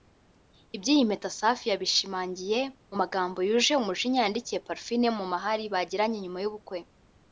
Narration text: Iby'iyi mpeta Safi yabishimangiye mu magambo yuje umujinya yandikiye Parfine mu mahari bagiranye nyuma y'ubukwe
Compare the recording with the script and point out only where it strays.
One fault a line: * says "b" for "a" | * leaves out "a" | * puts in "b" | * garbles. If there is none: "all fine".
all fine